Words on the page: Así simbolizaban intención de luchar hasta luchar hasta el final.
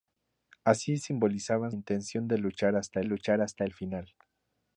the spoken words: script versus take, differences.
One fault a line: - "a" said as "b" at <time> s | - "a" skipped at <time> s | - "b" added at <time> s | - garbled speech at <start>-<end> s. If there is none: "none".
none